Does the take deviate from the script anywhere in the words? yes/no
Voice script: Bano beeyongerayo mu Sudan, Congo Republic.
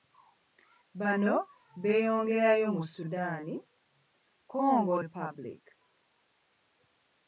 no